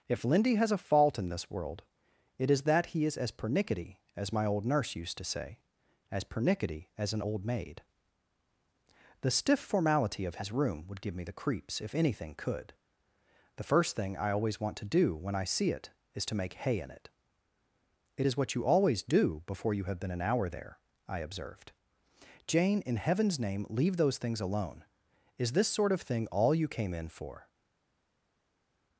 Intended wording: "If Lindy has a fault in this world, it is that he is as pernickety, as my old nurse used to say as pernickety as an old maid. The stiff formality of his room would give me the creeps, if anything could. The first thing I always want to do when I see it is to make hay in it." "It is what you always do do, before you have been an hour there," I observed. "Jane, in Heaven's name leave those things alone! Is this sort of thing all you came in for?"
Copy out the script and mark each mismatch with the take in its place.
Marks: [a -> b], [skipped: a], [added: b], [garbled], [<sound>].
"If Lindy has a fault in this world, it is that he is as pernickety, as my old nurse used to say as pernickety as an old maid. The stiff formality of his room would give me the creeps, if anything could. The first thing I always want to do when I see it is to make hay in it." "It is what you always do [skipped: do,] before you have been an hour there," I observed. "Jane, in Heaven's name leave those things alone! Is this sort of thing all you came in for?"